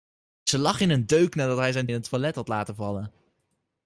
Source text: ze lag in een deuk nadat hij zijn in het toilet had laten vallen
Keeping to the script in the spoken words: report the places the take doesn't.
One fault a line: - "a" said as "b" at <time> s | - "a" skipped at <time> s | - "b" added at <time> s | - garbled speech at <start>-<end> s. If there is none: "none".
none